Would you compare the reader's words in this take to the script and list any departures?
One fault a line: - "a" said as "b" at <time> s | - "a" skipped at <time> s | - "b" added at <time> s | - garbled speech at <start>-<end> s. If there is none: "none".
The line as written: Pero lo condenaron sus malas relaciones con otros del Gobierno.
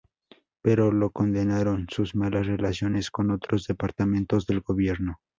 - "departamentos" added at 3.7 s